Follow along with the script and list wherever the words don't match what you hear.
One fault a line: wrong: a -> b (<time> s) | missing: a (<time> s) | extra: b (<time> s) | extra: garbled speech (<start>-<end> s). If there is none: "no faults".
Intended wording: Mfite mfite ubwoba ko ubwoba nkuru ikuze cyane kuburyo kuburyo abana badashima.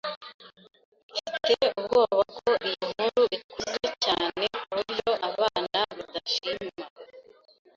missing: mfite (1.6 s)
wrong: ubwoba -> iyi (2.7 s)
missing: kuburyo (5.1 s)